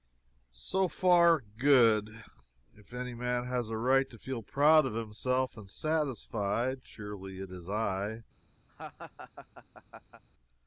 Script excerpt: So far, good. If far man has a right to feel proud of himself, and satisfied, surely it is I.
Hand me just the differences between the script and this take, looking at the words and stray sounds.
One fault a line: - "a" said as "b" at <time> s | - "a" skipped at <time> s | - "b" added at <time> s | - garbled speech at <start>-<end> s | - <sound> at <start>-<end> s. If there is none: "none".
- "far" said as "any" at 2.9 s
- laugh at 8.7-10.2 s